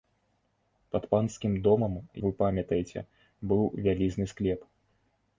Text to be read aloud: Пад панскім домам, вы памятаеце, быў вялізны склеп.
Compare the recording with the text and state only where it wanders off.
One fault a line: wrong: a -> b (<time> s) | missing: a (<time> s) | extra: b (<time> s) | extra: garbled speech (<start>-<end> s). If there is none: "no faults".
no faults